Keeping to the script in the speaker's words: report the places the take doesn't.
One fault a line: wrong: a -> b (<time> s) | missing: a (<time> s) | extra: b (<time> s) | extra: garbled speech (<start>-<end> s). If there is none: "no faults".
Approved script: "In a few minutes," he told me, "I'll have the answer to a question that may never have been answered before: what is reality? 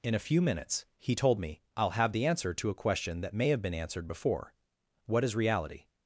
missing: never (3.5 s)